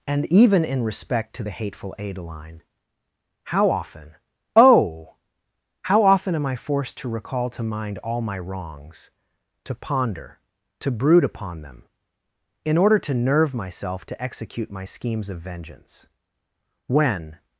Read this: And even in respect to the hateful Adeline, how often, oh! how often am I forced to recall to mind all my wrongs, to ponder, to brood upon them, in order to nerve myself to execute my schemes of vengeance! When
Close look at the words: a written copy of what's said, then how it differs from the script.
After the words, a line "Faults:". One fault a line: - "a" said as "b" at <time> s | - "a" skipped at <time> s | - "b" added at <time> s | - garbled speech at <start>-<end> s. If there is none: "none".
And even in respect to the hateful Adeline, how often, oh! how often am I forced to recall to mind all my wrongs, to ponder, to brood upon them, in order to nerve myself to execute my schemes of vengeance! When
Faults:
none